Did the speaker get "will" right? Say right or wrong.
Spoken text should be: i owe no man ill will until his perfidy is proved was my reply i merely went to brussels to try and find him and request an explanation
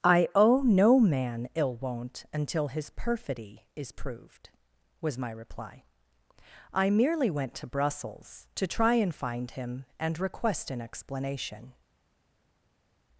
wrong